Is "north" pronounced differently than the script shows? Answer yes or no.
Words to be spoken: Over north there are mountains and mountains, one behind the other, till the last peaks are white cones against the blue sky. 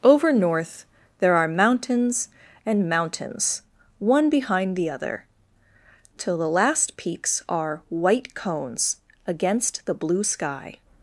no